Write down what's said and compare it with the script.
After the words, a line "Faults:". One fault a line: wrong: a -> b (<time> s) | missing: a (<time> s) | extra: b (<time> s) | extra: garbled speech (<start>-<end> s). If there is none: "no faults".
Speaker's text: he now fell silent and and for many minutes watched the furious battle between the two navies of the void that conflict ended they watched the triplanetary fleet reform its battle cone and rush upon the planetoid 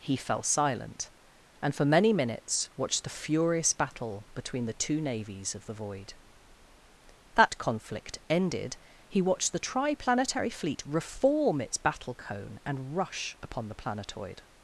he fell silent and for many minutes watched the furious battle between the two navies of the void that conflict ended he watched the triplanetary fleet reform its battle cone and rush upon the planetoid
Faults:
missing: now (0.2 s)
missing: and (1.8 s)
wrong: they -> he (9.1 s)